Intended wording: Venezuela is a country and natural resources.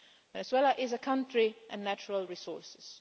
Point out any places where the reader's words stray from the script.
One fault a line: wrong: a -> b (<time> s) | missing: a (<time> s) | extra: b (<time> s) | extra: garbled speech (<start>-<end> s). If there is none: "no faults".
no faults